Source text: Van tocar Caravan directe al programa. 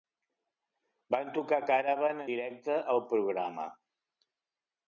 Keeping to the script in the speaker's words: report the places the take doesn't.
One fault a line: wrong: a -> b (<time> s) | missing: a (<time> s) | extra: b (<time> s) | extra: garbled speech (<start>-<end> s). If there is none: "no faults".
no faults